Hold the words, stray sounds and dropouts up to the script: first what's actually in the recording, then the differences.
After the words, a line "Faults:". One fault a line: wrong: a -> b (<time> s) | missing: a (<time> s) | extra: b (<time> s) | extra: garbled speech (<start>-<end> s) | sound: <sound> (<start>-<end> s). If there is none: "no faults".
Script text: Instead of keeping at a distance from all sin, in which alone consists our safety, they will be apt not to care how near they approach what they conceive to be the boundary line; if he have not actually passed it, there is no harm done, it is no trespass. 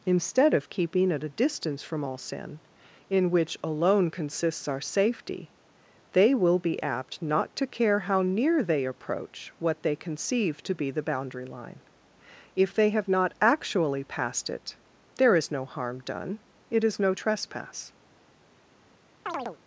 Instead of keeping at a distance from all sin, in which alone consists our safety, they will be apt not to care how near they approach what they conceive to be the boundary line; if they have not actually passed it, there is no harm done, it is no trespass.
Faults:
wrong: he -> they (12.7 s)
sound: chirp (19.3-19.6 s)